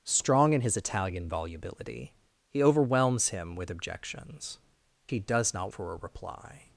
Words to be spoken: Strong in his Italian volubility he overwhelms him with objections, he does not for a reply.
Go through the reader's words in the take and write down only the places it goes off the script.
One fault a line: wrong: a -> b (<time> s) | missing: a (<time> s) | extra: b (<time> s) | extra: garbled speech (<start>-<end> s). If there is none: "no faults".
no faults